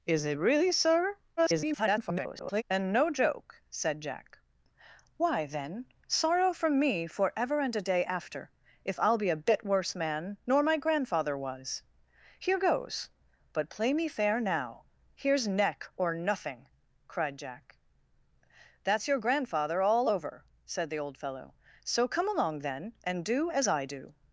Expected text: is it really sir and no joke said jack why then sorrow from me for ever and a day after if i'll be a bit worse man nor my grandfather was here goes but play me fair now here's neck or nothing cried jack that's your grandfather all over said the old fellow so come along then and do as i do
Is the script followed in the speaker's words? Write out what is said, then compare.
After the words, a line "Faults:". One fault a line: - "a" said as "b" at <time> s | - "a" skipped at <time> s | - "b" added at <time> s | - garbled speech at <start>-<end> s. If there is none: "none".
is it really sir [garbled] and no joke said jack why then sorrow from me for ever and a day after if i'll be a bit worse man nor my grandfather was here goes but play me fair now here's neck or nothing cried jack that's your grandfather all over said the old fellow so come along then and do as i do
Faults:
- garbled speech at 1.4-2.6 s